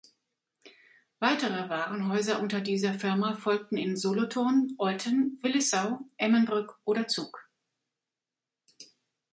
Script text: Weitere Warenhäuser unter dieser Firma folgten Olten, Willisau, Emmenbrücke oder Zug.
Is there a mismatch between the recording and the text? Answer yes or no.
yes